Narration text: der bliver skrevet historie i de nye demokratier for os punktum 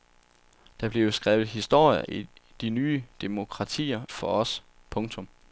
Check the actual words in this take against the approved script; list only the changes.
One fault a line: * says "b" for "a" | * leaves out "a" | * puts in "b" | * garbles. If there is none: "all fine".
all fine